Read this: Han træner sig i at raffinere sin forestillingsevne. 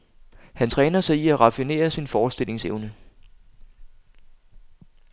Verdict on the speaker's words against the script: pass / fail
pass